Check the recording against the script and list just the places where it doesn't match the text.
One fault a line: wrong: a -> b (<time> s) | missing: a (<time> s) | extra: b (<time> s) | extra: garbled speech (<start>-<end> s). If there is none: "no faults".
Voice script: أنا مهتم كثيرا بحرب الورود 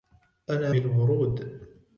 missing: مهتم كثيرا بحرب (0.8 s)